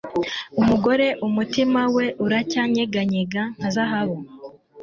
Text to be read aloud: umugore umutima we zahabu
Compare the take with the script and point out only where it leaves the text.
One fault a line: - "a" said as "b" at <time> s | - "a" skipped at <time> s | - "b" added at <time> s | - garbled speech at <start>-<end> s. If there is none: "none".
- "uracyanyeganyega nka" added at 2.3 s